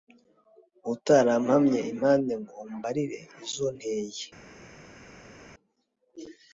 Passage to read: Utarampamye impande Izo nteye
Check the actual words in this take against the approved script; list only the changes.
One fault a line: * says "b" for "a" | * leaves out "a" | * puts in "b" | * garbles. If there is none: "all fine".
* puts in "Ngo umbarire"